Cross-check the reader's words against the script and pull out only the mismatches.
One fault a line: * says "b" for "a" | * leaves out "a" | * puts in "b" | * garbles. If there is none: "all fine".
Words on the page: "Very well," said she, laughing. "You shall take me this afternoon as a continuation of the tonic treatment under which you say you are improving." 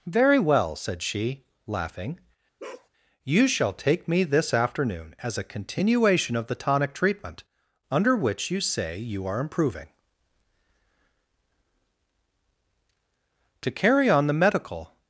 * puts in "To carry on the medical"